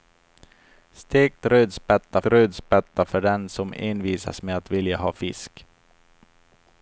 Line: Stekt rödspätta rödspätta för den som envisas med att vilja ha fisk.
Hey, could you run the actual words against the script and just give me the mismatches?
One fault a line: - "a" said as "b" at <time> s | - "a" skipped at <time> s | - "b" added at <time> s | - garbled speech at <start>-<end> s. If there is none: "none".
none